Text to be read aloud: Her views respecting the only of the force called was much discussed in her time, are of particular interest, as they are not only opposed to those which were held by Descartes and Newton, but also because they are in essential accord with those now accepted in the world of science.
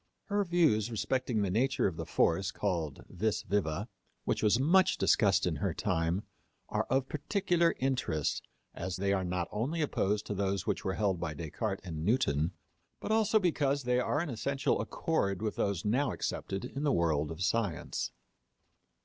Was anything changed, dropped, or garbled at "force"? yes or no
no